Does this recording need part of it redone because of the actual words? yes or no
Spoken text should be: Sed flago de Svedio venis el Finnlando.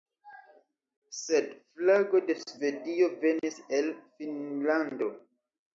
no